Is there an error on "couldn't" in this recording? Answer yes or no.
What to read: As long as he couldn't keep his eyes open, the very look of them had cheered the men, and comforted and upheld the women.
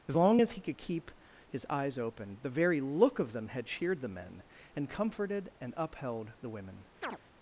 yes